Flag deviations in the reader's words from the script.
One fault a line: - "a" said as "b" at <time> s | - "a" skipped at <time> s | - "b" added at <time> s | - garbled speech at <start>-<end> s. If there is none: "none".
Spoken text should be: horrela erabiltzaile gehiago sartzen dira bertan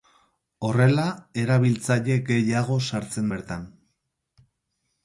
- "dira" skipped at 3.3 s